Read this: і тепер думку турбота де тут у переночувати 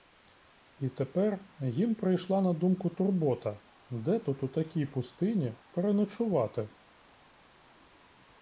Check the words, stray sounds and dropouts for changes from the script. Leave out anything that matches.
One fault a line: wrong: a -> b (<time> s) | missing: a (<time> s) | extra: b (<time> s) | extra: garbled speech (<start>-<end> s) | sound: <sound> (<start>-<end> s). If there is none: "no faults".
extra: їм прийшла на (1.6 s)
extra: такій пустині (4.5 s)